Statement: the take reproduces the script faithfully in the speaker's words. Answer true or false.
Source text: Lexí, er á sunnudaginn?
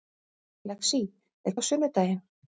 true